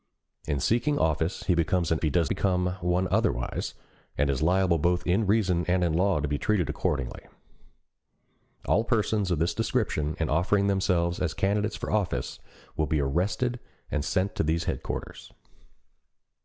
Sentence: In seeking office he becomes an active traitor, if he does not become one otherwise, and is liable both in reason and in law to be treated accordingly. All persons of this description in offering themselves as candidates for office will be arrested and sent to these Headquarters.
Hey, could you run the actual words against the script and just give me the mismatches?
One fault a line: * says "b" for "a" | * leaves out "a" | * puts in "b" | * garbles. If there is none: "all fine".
* leaves out "active traitor if"
* leaves out "not"